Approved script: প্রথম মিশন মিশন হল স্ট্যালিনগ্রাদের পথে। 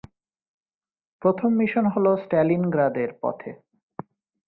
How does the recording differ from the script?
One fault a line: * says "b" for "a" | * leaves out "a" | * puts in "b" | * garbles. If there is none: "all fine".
* leaves out "মিশন"